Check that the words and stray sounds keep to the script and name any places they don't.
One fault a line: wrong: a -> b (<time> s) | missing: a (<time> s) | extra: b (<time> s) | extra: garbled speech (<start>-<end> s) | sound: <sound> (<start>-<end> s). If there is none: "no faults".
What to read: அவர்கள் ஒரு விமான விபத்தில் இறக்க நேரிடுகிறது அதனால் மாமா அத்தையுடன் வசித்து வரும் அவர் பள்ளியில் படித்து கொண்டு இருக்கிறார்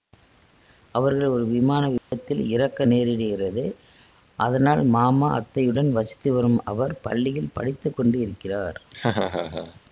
sound: dropout (2.0-2.1 s)
sound: laugh (8.9-9.8 s)